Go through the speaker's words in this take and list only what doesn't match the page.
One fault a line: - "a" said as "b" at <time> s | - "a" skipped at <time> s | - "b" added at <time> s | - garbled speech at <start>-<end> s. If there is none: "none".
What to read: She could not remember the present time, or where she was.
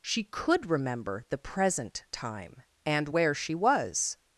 - "not" skipped at 0.7 s
- "or" said as "and" at 2.9 s